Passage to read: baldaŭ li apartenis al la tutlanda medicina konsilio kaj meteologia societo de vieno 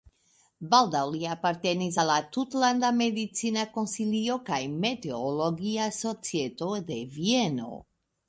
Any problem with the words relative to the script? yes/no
no